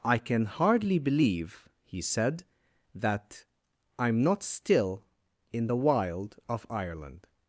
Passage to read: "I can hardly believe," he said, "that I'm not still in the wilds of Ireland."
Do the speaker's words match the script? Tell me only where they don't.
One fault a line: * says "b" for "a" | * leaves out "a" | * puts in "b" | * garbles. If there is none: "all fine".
* says "wild" for "wilds"